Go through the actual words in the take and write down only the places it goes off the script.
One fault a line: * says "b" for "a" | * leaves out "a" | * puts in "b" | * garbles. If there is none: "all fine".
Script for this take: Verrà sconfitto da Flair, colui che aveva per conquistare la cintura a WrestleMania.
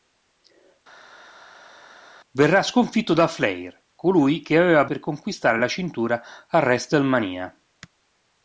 all fine